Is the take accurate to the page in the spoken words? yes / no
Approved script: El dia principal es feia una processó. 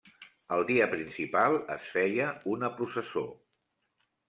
yes